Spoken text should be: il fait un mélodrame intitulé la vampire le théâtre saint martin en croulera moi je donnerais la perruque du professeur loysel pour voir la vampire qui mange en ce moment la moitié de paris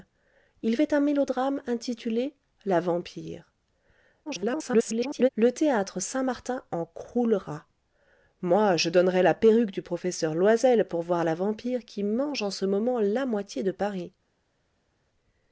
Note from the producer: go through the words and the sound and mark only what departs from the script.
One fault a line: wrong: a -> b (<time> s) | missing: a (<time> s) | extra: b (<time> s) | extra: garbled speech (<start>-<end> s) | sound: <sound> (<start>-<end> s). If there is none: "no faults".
extra: garbled speech (4.3-5.3 s)